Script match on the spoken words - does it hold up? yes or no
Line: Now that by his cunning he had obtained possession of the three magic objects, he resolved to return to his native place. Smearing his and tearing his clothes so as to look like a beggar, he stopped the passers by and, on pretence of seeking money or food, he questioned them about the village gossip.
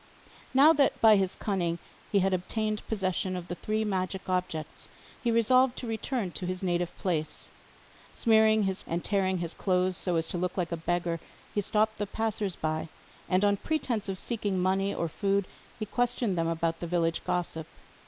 yes